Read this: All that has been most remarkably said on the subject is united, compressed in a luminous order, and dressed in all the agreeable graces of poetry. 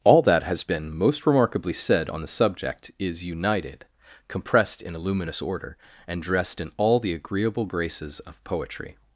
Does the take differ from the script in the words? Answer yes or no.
no